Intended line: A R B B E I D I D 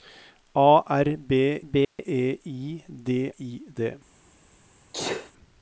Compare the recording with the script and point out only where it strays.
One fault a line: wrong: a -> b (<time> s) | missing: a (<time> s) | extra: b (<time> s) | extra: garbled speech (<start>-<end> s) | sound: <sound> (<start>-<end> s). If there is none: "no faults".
sound: dropout (1.8-2.0 s)
sound: sneeze (4.9-5.3 s)